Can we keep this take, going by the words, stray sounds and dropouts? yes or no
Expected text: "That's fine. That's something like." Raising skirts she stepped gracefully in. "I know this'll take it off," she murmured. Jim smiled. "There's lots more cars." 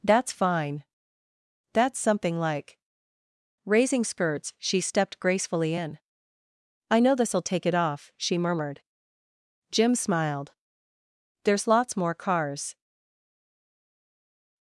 yes